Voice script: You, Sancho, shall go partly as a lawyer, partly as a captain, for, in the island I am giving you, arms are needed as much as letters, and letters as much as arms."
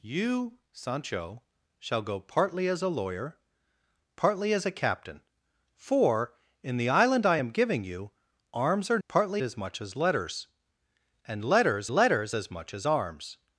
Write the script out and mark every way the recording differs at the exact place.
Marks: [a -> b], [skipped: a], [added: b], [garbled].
You, Sancho, shall go partly as a lawyer, partly as a captain, for, in the island I am giving you, arms are [needed -> partly] as much as letters, and letters [added: letters] as much as arms."